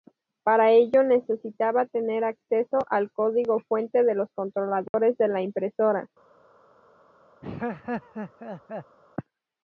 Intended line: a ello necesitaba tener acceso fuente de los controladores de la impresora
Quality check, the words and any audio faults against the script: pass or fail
fail